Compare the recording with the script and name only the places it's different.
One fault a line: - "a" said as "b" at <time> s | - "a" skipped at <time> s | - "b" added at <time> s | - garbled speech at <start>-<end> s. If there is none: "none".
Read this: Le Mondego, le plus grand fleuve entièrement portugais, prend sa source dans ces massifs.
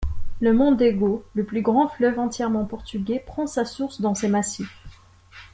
none